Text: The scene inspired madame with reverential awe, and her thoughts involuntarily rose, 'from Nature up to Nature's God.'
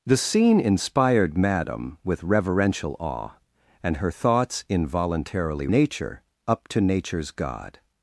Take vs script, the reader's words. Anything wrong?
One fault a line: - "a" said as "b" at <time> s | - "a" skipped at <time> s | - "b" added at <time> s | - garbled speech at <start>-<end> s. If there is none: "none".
- "rose from" skipped at 5.7 s